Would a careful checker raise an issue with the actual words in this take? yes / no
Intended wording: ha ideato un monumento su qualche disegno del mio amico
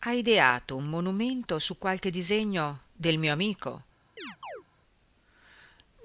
no